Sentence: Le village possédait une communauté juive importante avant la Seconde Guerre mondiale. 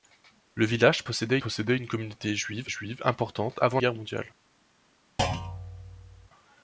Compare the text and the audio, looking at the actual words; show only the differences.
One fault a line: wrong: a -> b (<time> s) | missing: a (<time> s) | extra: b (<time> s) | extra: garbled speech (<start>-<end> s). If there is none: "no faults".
extra: possédait (1.4 s)
extra: juive (2.7 s)
missing: la Seconde (3.8 s)